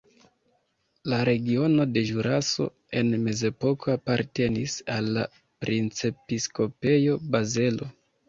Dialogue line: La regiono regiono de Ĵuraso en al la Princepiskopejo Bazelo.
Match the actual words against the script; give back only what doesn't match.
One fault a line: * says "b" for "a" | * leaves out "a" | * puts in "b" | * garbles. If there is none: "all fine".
* leaves out "regiono"
* puts in "mezepoko apartenis"